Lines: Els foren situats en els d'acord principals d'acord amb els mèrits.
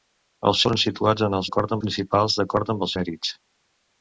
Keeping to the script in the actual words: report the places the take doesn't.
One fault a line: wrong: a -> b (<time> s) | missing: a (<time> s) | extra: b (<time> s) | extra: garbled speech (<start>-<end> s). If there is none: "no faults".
no faults